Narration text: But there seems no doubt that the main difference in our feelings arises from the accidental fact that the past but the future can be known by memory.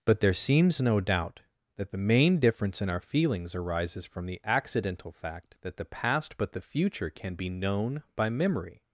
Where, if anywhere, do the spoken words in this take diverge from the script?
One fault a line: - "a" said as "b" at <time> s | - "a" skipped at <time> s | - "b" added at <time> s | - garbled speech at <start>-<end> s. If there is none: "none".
none